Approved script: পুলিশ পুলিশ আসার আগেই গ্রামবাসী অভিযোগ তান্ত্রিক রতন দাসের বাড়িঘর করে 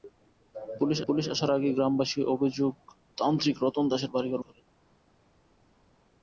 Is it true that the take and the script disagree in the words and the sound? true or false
false